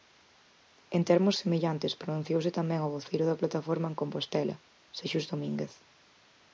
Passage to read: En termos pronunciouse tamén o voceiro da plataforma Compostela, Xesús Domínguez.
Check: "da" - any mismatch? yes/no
no